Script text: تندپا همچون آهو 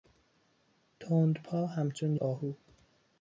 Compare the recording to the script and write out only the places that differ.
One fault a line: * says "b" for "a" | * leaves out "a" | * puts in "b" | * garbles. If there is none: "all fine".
all fine